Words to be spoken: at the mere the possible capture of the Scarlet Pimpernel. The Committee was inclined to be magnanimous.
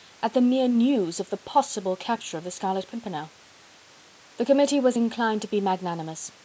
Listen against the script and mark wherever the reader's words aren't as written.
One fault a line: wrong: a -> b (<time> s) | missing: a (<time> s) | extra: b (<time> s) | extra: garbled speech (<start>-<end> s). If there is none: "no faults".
extra: news of (0.7 s)